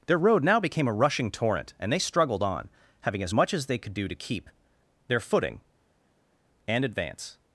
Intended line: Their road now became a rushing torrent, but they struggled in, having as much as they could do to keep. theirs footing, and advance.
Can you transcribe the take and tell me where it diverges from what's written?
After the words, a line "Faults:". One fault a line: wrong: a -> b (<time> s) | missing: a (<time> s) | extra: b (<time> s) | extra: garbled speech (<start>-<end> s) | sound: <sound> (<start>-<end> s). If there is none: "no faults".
Their road now became a rushing torrent, and they struggled on, having as much as they could do to keep. their footing, and advance.
Faults:
wrong: but -> and (1.8 s)
wrong: in -> on (2.4 s)
wrong: theirs -> their (5.1 s)